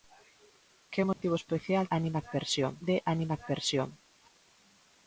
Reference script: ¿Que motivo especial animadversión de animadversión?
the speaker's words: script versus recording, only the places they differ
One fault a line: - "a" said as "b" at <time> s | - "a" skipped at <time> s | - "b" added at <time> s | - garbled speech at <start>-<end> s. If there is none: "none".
none